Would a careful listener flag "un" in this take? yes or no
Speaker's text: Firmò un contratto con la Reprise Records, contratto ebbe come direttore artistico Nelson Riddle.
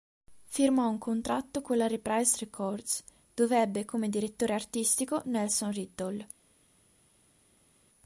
no